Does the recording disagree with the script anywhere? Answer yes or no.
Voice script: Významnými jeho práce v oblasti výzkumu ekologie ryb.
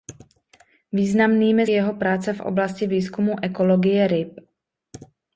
no